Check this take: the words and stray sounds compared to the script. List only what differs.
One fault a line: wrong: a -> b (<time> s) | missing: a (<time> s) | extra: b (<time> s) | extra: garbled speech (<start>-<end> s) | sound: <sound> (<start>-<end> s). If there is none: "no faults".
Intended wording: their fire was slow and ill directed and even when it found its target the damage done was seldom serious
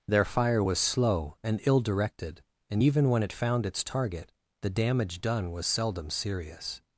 no faults